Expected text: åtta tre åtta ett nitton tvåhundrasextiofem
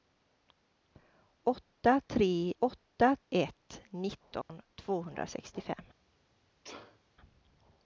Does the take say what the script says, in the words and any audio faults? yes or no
no